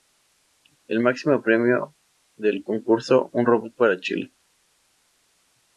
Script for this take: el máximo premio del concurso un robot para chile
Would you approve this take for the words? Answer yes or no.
yes